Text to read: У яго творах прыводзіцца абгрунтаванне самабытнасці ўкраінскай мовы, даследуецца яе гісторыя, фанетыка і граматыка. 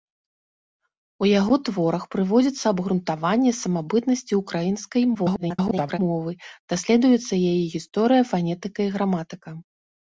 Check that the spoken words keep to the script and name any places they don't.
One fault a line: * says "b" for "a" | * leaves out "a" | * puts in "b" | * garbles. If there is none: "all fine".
* garbles